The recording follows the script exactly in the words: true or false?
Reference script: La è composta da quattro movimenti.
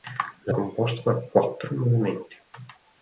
true